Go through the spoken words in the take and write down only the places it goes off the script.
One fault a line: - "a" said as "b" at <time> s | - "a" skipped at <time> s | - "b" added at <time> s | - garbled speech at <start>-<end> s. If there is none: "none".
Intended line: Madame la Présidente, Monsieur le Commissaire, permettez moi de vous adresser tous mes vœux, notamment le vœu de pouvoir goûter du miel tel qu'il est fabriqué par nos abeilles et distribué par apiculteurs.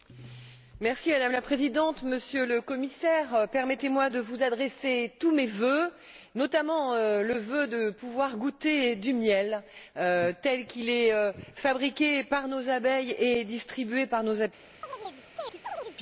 - "nos" added at 14.2 s